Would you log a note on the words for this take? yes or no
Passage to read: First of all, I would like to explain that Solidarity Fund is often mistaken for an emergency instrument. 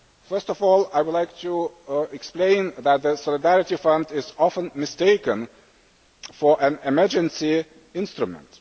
yes